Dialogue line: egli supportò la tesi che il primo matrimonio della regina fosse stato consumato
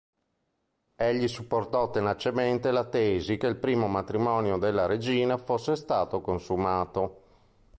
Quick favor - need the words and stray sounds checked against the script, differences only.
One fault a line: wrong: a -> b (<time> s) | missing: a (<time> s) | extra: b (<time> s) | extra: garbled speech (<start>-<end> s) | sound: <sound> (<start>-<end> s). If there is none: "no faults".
extra: tenacemente (1.9 s)